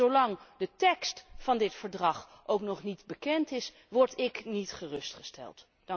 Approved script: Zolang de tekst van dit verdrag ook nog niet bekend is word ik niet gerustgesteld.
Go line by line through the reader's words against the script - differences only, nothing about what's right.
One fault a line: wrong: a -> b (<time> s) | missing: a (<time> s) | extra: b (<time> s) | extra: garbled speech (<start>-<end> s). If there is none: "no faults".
no faults